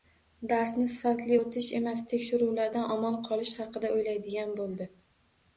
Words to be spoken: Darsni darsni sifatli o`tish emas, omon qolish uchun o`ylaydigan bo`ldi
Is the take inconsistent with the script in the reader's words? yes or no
yes